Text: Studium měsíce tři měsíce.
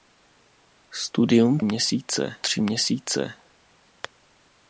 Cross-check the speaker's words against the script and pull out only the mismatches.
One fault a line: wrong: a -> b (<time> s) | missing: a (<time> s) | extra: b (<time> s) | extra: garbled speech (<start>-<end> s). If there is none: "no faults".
no faults